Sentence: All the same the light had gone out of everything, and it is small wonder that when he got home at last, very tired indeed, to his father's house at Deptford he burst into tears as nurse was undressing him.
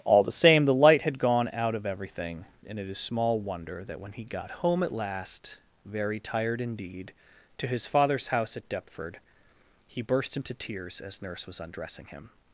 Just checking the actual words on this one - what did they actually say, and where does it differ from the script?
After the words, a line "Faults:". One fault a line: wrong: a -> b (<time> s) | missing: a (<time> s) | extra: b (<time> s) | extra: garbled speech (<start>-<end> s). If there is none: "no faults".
All the same the light had gone out of everything, and it is small wonder that when he got home at last, very tired indeed, to his father's house at Deptford he burst into tears as nurse was undressing him.
Faults:
no faults